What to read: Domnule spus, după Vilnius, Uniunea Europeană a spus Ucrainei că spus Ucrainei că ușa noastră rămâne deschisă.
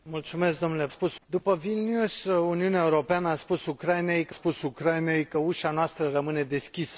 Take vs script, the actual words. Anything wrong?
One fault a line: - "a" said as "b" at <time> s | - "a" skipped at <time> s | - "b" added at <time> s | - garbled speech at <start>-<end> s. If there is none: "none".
none